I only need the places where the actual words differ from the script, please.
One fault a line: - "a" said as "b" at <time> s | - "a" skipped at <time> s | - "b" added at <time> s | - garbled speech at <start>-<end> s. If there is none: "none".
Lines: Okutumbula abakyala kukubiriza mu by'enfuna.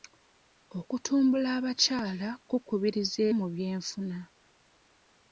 none